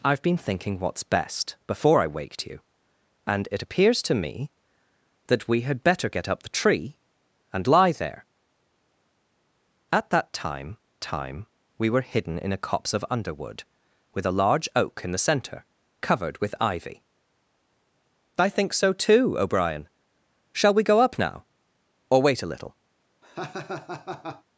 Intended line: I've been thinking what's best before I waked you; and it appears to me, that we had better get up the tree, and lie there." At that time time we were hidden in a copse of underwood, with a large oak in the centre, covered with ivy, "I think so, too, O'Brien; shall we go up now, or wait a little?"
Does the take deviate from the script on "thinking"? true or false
false